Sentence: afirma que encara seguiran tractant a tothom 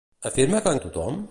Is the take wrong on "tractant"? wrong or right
wrong